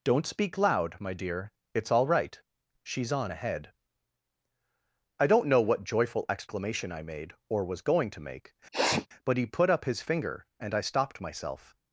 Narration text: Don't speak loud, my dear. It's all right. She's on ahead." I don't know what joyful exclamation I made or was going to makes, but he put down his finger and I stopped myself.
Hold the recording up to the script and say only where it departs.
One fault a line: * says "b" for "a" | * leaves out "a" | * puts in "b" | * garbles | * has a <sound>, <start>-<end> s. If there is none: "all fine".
* says "make" for "makes"
* has a sneeze, 8.7-9.1 s
* says "up" for "down"